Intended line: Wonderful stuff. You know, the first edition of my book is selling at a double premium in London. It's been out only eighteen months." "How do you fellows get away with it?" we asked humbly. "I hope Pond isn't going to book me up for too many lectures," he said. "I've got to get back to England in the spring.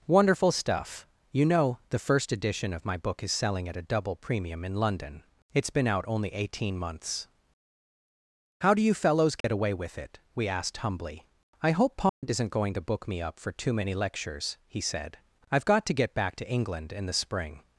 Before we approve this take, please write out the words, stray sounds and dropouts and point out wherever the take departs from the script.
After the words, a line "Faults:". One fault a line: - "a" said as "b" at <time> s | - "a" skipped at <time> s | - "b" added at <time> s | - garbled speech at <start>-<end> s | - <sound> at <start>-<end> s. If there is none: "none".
Wonderful stuff. You know, the first edition of my book is selling at a double premium in London. It's been out only eighteen months." "How do you fellows get away with it?" we asked humbly. "I hope Pond isn't going to book me up for too many lectures," he said. "I've got to get back to England in the spring.
Faults:
- dropout at 9.4-9.4 s
- dropout at 12.1-12.2 s